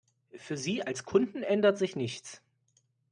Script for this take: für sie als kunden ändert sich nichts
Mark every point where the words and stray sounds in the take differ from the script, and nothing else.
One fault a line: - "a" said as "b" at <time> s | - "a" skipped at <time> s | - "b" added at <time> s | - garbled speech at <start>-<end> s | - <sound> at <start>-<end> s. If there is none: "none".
none